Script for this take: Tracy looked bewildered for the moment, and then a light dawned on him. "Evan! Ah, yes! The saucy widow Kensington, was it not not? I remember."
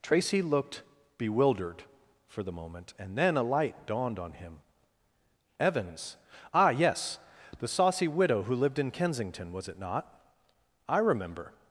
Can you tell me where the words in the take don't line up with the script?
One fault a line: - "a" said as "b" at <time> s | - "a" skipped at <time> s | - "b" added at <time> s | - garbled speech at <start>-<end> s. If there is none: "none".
- "Evan" said as "Evans" at 5.6 s
- "who lived in" added at 8.4 s
- "not" skipped at 10.2 s